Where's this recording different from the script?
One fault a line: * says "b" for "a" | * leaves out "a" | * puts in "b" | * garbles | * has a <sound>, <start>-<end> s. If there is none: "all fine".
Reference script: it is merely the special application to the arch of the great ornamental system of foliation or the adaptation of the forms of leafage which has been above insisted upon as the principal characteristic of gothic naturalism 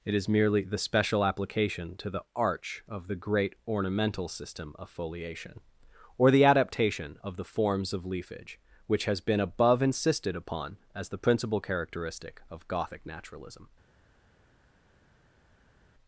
all fine